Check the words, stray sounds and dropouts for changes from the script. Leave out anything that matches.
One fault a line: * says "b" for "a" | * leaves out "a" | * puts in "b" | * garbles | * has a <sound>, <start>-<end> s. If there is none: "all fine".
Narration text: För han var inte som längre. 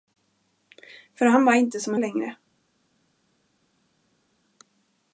all fine